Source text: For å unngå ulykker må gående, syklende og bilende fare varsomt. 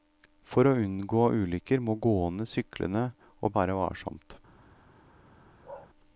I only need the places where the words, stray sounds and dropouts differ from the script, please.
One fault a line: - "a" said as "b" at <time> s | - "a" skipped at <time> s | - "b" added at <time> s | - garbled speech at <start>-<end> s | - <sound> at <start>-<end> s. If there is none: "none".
- "bilende" skipped at 3.5 s
- bark at 5.6-5.9 s